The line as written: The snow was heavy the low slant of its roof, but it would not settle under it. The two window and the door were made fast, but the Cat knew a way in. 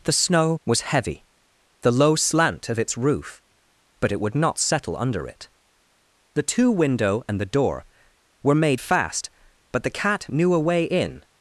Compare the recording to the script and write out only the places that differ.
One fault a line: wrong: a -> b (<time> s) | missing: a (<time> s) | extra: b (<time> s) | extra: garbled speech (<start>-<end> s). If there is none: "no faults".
no faults